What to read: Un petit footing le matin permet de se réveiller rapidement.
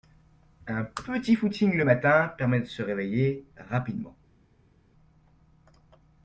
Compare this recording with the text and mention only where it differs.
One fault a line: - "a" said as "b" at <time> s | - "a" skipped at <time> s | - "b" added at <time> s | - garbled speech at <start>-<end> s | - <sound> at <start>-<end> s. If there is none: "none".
none